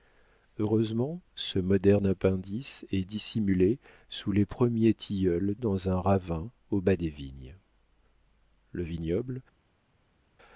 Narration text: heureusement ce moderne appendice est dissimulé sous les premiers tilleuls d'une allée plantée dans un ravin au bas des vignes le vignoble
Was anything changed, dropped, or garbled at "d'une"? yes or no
yes